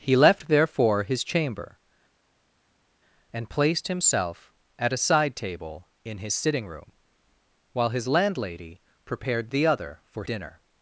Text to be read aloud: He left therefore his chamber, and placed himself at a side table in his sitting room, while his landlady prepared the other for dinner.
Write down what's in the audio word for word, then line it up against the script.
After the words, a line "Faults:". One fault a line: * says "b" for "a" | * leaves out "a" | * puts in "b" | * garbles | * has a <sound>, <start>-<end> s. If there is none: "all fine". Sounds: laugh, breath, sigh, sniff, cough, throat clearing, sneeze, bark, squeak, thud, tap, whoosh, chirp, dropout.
He left therefore his chamber, and placed himself at a side table in his sitting room, while his landlady prepared the other for dinner.
Faults:
all fine